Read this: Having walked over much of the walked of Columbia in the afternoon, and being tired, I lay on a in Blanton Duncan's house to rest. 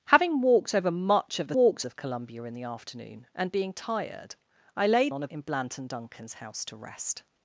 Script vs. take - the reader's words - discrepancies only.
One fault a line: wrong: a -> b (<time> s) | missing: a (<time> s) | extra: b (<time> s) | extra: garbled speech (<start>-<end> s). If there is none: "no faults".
no faults